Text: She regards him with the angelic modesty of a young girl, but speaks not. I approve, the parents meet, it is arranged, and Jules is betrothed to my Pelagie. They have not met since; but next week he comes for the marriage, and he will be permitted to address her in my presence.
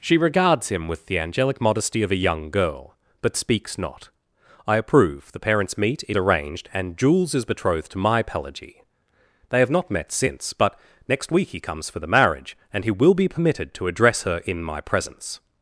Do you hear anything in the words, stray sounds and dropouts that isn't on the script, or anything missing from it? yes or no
yes